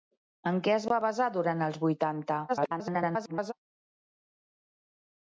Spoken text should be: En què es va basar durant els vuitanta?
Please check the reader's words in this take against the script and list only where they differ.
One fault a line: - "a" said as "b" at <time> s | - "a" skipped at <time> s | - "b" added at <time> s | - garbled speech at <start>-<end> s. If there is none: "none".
- garbled speech at 2.5-3.5 s